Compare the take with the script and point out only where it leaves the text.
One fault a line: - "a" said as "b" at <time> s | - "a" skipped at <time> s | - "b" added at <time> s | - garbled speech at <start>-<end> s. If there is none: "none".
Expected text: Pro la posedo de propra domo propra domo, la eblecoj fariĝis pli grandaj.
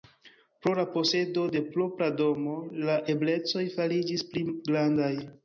- "propra domo" skipped at 2.6 s